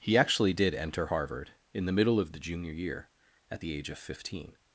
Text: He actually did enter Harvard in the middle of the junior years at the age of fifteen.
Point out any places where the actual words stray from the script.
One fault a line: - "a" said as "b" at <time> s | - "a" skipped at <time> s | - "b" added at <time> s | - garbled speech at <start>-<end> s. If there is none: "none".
- "years" said as "year" at 2.7 s